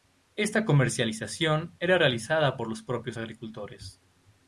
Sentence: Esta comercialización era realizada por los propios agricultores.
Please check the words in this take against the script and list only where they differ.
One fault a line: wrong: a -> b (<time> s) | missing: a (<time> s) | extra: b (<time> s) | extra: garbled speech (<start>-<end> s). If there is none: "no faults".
no faults